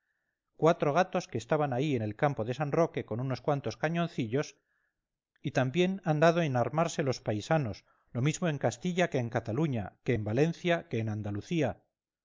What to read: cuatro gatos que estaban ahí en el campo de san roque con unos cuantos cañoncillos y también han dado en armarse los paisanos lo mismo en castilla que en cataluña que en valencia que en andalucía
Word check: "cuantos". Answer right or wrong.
right